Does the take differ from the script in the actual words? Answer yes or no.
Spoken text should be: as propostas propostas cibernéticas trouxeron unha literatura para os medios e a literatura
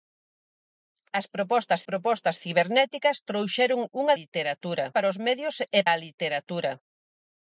no